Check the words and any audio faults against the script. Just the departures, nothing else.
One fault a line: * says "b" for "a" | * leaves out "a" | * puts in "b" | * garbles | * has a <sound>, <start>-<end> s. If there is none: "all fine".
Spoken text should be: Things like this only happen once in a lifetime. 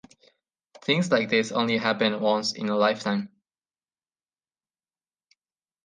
all fine